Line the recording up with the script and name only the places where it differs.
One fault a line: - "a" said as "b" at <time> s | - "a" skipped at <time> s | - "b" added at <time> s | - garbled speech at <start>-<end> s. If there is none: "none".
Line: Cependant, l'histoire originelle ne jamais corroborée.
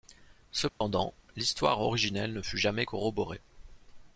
- "fut" added at 2.4 s